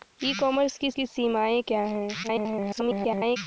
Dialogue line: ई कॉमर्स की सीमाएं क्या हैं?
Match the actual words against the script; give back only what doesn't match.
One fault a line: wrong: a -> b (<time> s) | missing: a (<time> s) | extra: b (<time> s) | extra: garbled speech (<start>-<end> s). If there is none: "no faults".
extra: की (0.9 s)
extra: garbled speech (2.2-3.4 s)